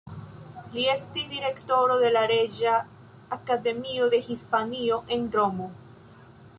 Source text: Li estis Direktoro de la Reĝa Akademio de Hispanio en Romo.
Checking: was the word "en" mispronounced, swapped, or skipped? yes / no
no